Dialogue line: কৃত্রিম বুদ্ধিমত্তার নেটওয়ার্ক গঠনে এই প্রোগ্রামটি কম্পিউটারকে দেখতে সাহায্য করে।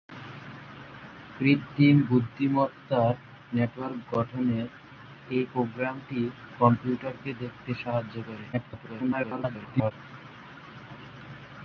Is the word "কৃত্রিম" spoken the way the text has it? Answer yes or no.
yes